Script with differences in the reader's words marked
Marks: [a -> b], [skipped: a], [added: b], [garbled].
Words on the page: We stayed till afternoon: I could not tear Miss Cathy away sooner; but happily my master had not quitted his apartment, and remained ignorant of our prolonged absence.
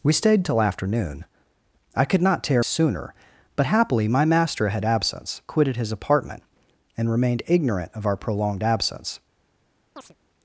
We stayed till afternoon: I could not tear [skipped: Miss Cathy away] sooner; but happily my master had [not -> absence] quitted his apartment, and remained ignorant of our prolonged absence.